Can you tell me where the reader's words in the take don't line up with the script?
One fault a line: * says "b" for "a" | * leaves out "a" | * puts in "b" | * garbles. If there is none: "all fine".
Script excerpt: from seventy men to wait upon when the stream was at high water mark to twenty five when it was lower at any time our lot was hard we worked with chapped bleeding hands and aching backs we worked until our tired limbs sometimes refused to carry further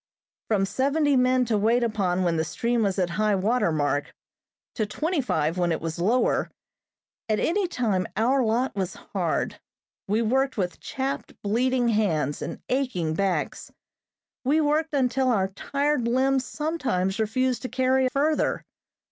all fine